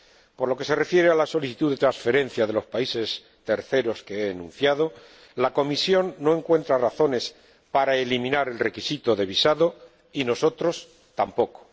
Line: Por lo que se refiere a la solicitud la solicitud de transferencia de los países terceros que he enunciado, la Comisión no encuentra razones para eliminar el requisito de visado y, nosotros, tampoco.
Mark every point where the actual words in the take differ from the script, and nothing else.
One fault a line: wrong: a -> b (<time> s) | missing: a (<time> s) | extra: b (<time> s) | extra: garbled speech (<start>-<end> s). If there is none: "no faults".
missing: la solicitud (1.7 s)